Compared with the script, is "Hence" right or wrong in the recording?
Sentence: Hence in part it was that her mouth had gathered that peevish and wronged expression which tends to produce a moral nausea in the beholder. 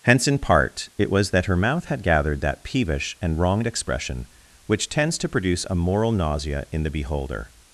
right